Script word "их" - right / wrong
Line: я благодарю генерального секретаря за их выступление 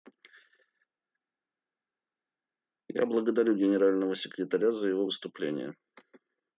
wrong